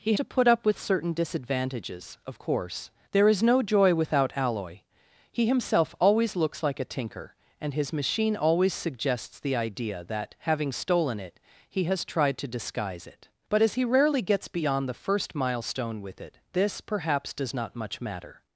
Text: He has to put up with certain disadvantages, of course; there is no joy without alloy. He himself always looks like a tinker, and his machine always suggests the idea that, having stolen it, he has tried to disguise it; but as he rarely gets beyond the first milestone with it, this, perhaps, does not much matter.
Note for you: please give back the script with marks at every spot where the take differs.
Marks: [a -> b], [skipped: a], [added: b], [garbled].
He [skipped: has] to put up with certain disadvantages, of course; there is no joy without alloy. He himself always looks like a tinker, and his machine always suggests the idea that, having stolen it, he has tried to disguise it; but as he rarely gets beyond the first milestone with it, this, perhaps, does not much matter.